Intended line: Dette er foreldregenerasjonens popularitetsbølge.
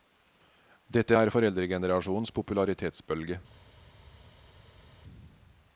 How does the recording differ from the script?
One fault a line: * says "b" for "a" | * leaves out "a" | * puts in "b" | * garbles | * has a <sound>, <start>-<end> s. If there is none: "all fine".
all fine